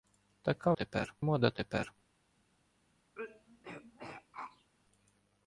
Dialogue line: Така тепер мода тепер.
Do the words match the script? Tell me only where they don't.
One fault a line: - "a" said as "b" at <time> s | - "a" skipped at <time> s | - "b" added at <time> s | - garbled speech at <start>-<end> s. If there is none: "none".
none